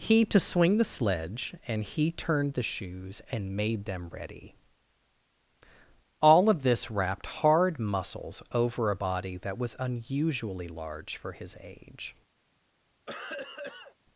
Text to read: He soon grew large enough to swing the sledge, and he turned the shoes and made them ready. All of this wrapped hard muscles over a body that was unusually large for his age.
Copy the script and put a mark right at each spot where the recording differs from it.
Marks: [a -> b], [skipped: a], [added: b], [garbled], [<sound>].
He [skipped: soon grew large enough] to swing the sledge, and he turned the shoes and made them ready. All of this wrapped hard muscles over a body that was unusually large for his age. [cough]